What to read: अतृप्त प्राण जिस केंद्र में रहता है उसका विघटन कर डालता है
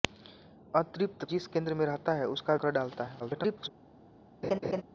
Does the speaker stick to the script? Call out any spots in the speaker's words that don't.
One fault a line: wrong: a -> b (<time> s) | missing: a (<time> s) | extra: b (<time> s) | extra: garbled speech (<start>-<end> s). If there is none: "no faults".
missing: प्राण (1.2 s)
missing: विघटन (2.5 s)
extra: garbled speech (3.2-3.7 s)